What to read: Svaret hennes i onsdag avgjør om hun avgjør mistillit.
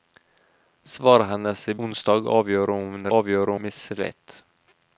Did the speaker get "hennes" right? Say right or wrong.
right